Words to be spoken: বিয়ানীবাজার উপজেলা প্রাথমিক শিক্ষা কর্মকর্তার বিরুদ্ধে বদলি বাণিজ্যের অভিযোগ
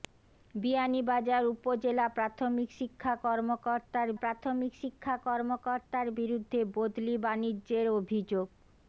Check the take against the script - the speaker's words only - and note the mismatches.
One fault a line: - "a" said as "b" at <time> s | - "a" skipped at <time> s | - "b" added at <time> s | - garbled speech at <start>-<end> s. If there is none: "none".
- "প্রাথমিক শিক্ষা কর্মকর্তার" added at 4.1 s